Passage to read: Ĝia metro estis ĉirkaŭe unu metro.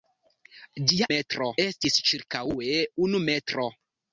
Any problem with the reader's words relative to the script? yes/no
no